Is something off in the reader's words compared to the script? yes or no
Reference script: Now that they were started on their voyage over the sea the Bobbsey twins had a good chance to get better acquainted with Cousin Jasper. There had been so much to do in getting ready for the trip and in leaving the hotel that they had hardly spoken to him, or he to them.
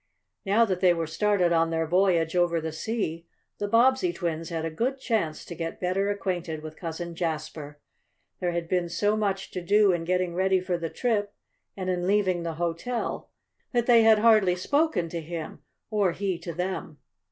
no